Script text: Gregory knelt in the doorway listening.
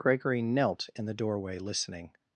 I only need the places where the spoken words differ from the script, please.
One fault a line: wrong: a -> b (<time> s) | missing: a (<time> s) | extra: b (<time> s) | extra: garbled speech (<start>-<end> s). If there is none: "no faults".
no faults